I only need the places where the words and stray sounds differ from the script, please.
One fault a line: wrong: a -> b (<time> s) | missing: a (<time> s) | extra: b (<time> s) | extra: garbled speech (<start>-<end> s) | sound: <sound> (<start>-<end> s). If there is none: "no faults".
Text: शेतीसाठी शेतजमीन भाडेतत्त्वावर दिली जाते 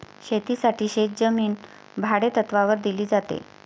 no faults